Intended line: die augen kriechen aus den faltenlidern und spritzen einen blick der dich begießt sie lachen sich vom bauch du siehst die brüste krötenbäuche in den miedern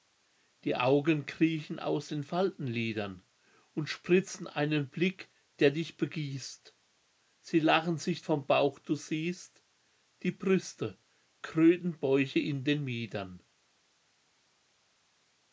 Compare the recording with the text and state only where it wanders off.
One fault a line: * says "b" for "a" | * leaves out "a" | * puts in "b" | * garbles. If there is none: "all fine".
all fine